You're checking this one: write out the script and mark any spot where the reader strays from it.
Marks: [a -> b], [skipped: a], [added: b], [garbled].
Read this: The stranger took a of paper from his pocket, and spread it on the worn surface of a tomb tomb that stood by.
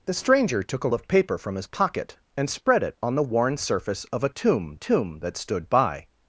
The stranger took a of paper from his pocket, and spread it on the worn surface of a tomb tomb that stood by.